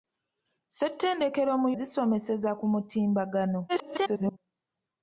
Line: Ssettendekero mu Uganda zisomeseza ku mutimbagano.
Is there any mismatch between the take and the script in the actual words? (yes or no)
yes